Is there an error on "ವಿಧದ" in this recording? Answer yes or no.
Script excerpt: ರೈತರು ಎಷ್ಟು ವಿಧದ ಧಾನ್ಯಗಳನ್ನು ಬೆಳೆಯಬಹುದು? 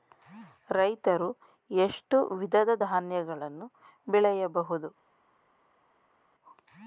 no